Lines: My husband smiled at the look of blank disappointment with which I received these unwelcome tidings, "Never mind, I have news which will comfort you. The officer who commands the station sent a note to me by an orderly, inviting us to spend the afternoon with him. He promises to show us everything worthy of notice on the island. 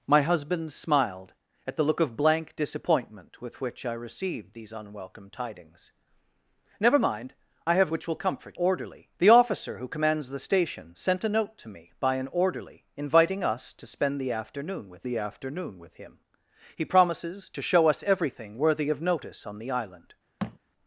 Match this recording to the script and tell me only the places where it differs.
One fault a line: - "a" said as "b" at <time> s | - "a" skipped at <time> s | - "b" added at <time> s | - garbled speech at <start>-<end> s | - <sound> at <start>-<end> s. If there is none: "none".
- "news" skipped at 7.9 s
- "you" said as "orderly" at 8.5 s
- "the afternoon with" added at 15.1 s
- thud at 20.4-20.6 s